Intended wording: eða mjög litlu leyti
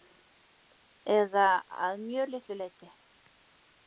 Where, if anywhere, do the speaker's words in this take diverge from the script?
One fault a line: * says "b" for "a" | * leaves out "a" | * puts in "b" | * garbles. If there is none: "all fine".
* puts in "að"